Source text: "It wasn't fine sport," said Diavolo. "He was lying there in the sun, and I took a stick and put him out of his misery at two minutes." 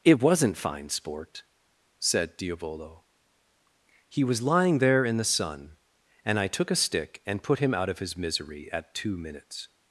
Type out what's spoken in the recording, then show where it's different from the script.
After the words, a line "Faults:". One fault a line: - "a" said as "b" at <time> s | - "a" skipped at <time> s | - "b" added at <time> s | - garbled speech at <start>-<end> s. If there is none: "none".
"It wasn't fine sport," said Diavolo. "He was lying there in the sun, and I took a stick and put him out of his misery at two minutes."
Faults:
none